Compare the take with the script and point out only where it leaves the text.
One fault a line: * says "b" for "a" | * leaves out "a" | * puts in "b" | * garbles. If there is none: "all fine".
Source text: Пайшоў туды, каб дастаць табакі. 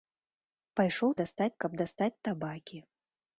* says "дастаць" for "туды"